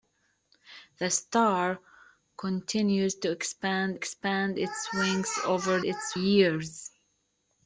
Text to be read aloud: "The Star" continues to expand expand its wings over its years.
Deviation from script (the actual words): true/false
false